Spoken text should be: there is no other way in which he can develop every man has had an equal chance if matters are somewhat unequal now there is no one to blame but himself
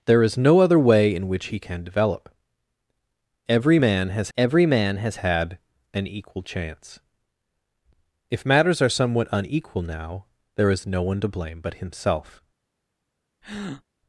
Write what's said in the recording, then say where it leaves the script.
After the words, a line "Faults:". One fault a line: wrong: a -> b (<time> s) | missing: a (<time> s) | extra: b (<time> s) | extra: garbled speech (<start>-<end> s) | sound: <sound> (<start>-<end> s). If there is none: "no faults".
there is no other way in which he can develop every man has every man has had an equal chance if matters are somewhat unequal now there is no one to blame but himself
Faults:
extra: every man has (4.4 s)
sound: breath (13.4-13.8 s)